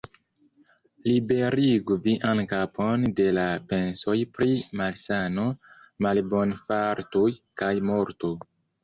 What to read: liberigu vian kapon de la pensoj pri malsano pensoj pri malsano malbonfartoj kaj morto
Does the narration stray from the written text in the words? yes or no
yes